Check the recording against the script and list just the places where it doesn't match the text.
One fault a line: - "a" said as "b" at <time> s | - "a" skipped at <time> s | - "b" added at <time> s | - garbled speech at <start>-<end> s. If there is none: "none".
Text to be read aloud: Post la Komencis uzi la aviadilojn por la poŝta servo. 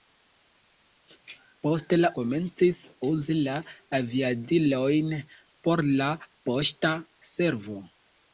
none